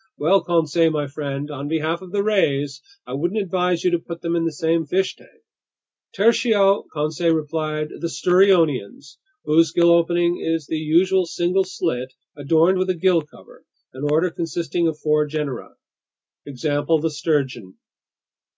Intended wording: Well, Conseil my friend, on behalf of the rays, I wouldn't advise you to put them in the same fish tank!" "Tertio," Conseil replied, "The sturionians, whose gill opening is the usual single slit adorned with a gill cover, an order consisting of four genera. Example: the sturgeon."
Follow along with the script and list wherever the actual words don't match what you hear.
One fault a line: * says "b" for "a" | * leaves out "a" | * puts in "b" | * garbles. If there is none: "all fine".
all fine